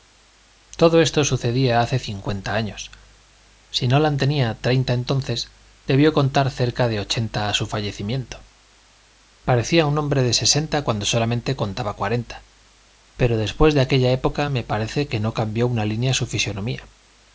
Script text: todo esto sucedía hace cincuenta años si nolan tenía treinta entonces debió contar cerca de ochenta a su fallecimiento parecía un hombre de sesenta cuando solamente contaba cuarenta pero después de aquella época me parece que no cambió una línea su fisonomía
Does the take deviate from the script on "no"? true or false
false